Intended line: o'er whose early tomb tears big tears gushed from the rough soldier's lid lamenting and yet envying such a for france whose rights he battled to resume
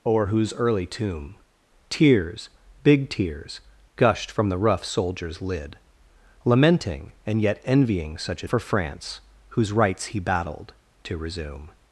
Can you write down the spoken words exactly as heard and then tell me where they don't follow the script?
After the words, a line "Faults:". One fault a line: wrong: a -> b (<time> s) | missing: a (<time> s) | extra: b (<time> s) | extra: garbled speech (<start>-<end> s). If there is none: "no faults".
o'er whose early tomb tears big tears gushed from the rough soldier's lid lamenting and yet envying such a for france whose rights he battled to resume
Faults:
no faults